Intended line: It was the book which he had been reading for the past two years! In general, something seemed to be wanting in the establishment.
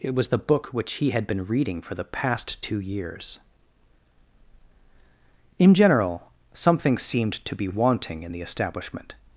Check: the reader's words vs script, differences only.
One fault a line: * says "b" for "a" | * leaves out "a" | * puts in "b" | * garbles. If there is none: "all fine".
all fine